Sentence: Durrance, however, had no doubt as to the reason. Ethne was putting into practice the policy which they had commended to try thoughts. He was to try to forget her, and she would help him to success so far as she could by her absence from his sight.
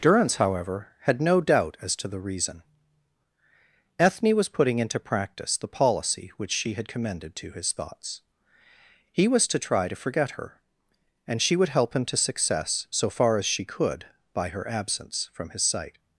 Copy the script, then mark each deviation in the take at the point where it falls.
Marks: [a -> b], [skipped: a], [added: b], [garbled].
Durrance, however, had no doubt as to the reason. Ethne was putting into practice the policy which [they -> she] had commended to [try -> his] thoughts. He was to try to forget her, and she would help him to success so far as she could by her absence from his sight.